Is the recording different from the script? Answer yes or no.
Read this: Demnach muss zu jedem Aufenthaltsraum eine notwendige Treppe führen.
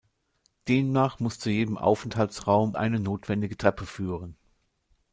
no